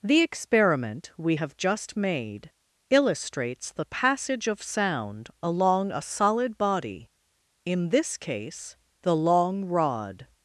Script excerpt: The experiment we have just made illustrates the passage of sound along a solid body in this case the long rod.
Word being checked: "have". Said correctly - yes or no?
yes